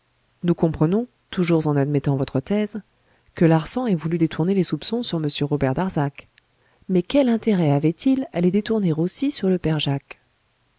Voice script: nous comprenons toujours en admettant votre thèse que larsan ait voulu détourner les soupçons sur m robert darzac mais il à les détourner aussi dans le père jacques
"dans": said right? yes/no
no